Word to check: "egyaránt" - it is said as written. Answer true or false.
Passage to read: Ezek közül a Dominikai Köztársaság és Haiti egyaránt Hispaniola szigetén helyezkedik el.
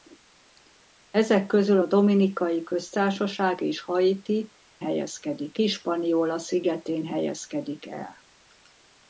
false